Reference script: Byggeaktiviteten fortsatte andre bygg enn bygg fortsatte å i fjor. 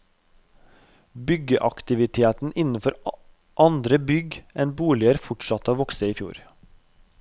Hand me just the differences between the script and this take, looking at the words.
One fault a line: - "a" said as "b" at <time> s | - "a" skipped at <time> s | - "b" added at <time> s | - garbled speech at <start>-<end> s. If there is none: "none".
- "fortsatte" said as "innenfor" at 2.6 s
- "bygg" said as "boliger" at 4.8 s
- "vokse" added at 5.8 s